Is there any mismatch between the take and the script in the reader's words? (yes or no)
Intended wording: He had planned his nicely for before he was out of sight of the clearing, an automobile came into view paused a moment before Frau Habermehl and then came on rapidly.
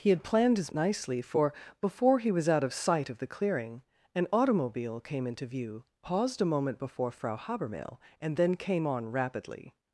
no